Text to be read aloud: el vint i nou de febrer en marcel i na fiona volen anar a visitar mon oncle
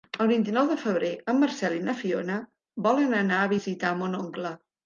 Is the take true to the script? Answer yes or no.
yes